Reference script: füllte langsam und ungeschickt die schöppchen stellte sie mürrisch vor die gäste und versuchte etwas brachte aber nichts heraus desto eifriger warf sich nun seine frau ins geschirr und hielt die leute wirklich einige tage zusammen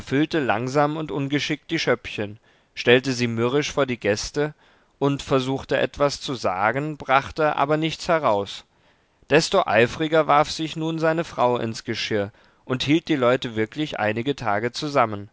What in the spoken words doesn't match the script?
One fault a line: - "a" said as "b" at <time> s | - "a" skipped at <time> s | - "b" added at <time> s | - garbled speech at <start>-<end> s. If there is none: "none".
- "zu sagen" added at 6.2 s